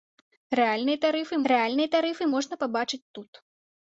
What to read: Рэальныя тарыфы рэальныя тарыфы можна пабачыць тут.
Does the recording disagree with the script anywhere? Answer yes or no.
no